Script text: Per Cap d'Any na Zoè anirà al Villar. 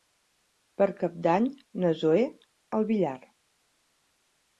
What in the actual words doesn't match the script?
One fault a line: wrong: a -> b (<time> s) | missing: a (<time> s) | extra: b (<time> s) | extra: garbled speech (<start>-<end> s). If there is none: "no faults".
missing: anirà (2.2 s)